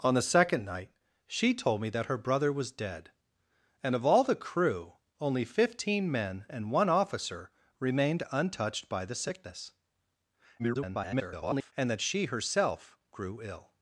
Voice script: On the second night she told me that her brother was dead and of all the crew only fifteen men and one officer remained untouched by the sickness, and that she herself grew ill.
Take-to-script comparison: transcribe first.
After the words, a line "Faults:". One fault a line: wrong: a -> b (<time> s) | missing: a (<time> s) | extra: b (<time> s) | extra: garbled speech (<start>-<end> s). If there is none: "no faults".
On the second night she told me that her brother was dead and of all the crew only fifteen men and one officer remained untouched by the sickness, [garbled] and that she herself grew ill.
Faults:
extra: garbled speech (10.6-11.7 s)